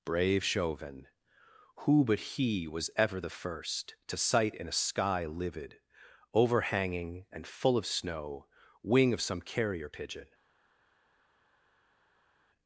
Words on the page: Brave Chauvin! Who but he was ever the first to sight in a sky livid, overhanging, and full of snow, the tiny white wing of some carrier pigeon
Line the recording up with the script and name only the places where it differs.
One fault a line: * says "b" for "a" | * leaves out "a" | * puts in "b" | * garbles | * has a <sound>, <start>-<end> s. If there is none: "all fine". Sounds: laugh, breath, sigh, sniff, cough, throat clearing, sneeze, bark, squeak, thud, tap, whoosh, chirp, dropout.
* leaves out "the tiny white"